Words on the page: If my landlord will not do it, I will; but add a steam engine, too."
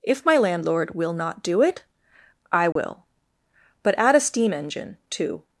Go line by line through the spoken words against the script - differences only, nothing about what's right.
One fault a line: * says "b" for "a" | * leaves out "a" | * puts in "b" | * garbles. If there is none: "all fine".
all fine